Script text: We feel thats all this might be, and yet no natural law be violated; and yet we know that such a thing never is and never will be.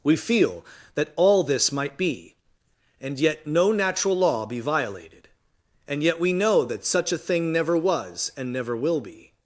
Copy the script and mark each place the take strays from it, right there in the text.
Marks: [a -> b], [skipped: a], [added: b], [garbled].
We feel [thats -> that] all this might be, and yet no natural law be violated; and yet we know that such a thing never [is -> was] and never will be.